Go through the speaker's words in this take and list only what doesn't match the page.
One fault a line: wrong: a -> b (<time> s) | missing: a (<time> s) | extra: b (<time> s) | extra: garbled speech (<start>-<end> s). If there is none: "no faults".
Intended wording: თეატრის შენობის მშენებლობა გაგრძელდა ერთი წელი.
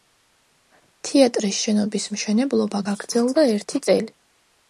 no faults